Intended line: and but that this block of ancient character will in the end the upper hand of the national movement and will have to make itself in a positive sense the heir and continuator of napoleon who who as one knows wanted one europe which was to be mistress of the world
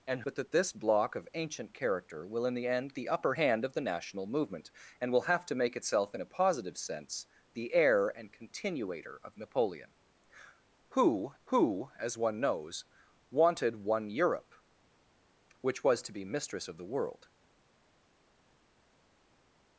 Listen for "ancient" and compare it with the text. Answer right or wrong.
right